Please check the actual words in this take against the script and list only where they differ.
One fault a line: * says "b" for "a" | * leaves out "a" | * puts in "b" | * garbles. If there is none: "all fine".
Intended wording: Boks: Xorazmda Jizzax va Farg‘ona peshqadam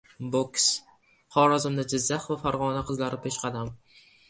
* puts in "qizlari"